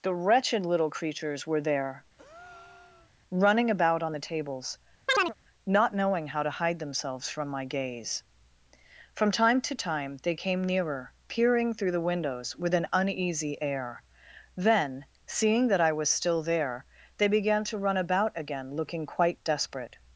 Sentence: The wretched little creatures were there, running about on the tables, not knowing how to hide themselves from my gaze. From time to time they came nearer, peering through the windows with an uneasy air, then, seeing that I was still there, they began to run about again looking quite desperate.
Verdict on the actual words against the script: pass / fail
pass